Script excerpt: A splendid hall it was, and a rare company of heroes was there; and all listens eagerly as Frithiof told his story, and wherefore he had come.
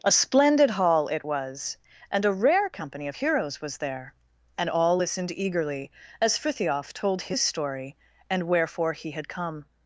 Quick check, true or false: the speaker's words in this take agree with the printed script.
false